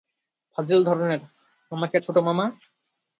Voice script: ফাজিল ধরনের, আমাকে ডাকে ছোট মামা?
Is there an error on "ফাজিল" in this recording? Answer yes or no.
no